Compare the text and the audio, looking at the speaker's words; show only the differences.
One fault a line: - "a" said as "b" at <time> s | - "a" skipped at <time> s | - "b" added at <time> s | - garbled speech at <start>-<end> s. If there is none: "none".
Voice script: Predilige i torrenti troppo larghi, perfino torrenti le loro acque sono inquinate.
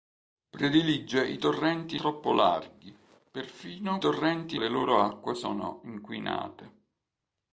none